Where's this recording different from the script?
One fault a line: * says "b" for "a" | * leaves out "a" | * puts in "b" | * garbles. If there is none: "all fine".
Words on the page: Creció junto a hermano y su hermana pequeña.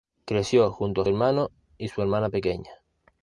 all fine